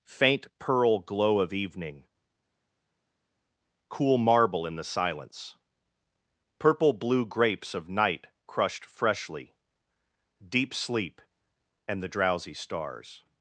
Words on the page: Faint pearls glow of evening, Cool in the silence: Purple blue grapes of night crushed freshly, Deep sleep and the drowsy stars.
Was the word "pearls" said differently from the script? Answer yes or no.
yes